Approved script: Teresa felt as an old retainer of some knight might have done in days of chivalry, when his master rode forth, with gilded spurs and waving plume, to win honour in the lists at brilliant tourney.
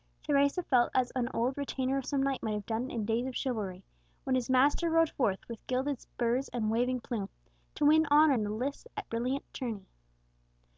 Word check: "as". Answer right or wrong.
right